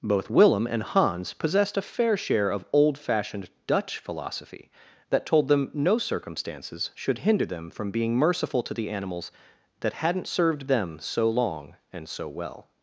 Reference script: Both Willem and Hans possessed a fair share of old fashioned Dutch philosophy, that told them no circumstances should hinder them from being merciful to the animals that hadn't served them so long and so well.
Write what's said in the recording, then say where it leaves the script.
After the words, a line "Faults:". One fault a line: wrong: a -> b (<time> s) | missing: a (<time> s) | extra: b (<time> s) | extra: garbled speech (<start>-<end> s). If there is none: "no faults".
Both Willem and Hans possessed a fair share of old fashioned Dutch philosophy, that told them no circumstances should hinder them from being merciful to the animals that hadn't served them so long and so well.
Faults:
no faults